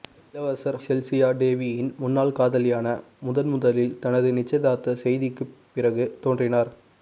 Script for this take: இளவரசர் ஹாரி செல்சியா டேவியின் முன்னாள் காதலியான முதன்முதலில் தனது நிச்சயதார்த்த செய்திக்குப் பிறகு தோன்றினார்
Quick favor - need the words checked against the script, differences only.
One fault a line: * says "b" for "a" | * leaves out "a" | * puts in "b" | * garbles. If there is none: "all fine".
* leaves out "ஹாரி"